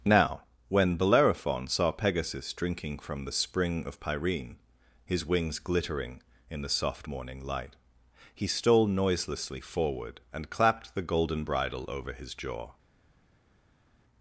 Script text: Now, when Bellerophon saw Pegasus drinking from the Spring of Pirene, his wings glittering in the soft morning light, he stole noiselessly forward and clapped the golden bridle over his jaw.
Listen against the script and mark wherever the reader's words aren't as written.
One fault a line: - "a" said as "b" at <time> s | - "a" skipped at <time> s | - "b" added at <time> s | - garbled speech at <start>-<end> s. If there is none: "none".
none